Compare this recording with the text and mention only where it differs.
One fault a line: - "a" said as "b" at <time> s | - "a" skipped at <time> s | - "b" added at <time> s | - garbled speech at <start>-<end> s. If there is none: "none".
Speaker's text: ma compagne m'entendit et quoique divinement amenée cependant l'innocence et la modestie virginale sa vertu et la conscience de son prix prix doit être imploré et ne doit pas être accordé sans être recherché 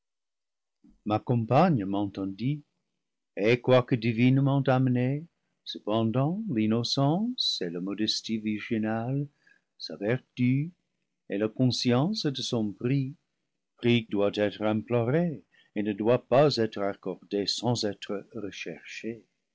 none